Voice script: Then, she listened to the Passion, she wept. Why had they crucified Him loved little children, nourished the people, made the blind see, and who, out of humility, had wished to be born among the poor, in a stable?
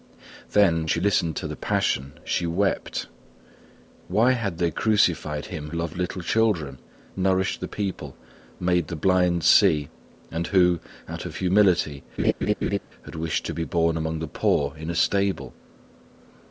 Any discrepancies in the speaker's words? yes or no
no